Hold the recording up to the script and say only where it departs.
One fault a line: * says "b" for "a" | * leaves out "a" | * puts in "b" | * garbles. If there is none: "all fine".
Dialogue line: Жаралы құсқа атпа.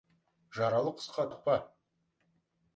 all fine